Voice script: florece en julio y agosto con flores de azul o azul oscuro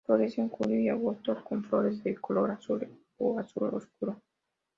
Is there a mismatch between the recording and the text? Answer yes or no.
yes